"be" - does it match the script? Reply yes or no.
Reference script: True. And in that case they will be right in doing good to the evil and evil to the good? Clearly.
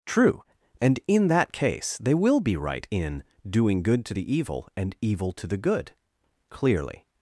yes